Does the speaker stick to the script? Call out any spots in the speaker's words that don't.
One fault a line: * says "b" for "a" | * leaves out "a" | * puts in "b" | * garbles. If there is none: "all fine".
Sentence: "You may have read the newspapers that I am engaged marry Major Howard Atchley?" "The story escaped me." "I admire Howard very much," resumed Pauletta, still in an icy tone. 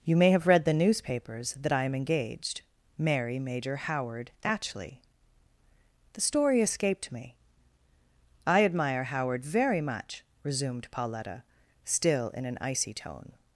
all fine